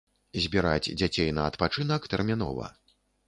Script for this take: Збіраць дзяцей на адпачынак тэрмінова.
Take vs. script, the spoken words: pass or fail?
pass